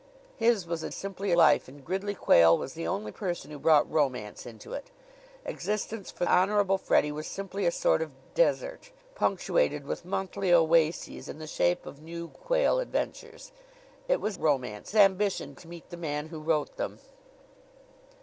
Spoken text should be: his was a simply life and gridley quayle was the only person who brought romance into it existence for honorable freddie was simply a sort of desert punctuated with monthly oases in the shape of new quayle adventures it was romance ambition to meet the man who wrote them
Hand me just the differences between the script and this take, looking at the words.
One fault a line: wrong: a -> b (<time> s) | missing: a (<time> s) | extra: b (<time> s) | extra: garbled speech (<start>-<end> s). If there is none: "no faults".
no faults